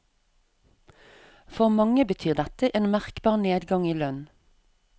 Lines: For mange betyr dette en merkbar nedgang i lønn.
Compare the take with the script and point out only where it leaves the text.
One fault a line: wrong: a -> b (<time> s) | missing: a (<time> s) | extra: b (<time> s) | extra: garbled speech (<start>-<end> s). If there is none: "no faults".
no faults